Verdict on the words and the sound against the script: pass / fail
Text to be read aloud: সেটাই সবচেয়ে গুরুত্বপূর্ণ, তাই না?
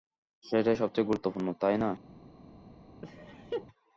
fail